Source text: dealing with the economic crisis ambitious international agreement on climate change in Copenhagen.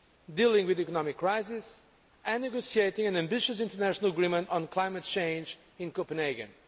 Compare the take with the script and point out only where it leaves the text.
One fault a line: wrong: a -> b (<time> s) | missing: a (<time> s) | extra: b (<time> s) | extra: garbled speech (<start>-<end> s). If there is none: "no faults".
extra: and negotiating an (2.2 s)